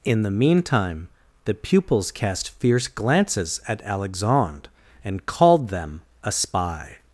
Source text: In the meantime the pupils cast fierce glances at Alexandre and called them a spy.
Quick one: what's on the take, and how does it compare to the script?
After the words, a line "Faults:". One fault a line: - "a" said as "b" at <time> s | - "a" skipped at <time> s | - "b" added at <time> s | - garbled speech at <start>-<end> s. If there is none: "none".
In the meantime the pupils cast fierce glances at Alexandre and called them a spy.
Faults:
none